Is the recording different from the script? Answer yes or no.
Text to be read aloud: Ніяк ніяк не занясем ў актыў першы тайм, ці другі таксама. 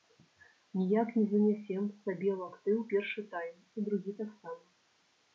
yes